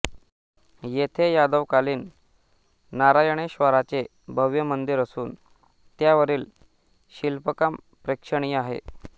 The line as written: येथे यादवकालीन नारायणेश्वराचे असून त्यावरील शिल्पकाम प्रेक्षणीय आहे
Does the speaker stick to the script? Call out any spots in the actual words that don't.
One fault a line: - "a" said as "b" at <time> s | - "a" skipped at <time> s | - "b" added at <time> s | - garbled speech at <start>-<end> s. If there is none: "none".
- "भव्य मंदिर" added at 4.3 s